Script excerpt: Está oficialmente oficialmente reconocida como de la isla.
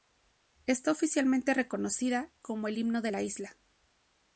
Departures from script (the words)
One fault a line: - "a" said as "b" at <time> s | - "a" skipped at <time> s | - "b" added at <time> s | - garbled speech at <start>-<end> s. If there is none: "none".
- "oficialmente" skipped at 1.5 s
- "el himno" added at 2.7 s